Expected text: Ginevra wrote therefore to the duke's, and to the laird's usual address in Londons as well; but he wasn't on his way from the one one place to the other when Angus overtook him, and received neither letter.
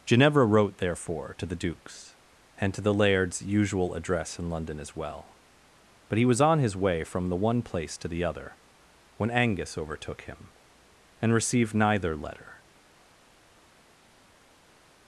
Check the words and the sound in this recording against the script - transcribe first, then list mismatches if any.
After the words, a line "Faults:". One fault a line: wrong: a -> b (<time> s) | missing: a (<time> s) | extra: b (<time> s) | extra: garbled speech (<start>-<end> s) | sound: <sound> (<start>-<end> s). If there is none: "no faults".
Ginevra wrote therefore to the duke's, and to the laird's usual address in London as well; but he was on his way from the one place to the other when Angus overtook him, and received neither letter.
Faults:
wrong: Londons -> London (4.5 s)
wrong: wasn't -> was (6.2 s)
missing: one (7.6 s)